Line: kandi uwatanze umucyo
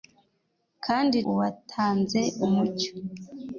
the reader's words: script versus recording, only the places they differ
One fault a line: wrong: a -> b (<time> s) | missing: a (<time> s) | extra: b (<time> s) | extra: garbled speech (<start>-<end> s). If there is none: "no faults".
no faults